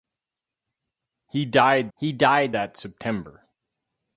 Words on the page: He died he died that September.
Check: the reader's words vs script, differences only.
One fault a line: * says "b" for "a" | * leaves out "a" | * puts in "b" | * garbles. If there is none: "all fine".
all fine